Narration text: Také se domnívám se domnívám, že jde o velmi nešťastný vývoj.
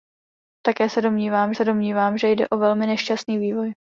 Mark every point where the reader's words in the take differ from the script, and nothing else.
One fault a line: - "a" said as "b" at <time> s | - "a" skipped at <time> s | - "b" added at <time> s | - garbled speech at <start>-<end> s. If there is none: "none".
none